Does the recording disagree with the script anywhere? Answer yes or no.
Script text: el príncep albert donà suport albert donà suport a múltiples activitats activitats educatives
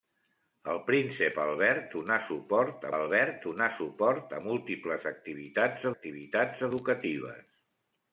no